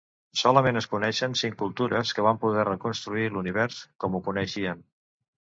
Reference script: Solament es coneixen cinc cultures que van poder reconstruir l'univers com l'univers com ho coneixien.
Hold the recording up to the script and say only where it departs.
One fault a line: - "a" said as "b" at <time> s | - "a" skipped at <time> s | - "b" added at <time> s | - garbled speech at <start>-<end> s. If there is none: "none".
- "l'univers com" skipped at 4.2 s